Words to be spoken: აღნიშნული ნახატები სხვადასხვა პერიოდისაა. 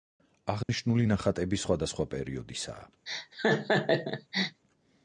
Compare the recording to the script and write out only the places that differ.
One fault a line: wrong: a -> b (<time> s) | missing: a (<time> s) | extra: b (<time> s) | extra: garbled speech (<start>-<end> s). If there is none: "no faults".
no faults